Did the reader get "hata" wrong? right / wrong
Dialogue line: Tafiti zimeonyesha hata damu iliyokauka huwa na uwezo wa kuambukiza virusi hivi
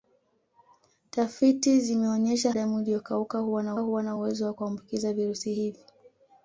wrong